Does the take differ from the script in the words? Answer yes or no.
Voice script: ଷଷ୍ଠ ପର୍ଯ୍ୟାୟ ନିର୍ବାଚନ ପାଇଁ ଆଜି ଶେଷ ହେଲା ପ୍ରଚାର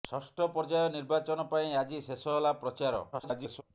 yes